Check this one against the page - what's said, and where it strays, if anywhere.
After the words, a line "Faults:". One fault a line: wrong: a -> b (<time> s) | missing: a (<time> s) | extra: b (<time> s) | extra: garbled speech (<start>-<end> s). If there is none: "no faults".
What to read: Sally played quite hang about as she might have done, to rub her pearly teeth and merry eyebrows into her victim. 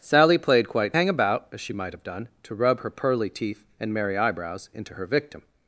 Sally played quite hang about as she might have done, to rub her pearly teeth and merry eyebrows into her victim.
Faults:
no faults